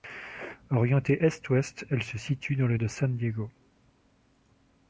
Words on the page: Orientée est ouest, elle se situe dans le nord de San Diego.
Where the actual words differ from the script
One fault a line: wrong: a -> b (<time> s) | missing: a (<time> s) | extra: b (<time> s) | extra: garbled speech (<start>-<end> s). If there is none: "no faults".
missing: nord (2.8 s)